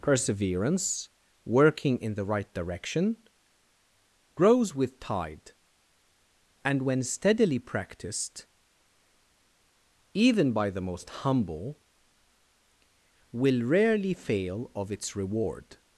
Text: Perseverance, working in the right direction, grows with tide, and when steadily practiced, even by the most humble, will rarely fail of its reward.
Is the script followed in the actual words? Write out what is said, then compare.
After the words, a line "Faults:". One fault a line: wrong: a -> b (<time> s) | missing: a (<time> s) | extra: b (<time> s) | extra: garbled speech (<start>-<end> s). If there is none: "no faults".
Perseverance, working in the right direction, grows with tide, and when steadily practiced, even by the most humble, will rarely fail of its reward.
Faults:
no faults